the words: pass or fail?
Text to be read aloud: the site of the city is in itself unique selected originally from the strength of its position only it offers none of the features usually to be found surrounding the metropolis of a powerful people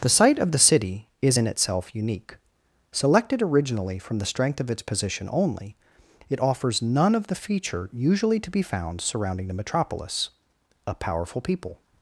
fail